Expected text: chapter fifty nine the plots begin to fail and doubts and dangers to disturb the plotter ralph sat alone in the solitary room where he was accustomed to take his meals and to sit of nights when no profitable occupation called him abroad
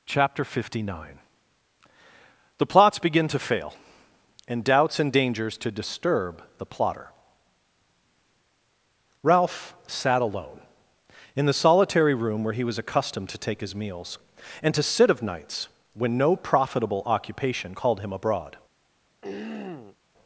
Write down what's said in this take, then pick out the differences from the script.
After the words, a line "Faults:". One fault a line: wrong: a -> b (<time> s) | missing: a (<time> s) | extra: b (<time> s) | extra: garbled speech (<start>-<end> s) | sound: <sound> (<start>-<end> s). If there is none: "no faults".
chapter fifty nine the plots begin to fail and doubts and dangers to disturb the plotter ralph sat alone in the solitary room where he was accustomed to take his meals and to sit of nights when no profitable occupation called him abroad
Faults:
sound: throat clearing (19.2-20.0 s)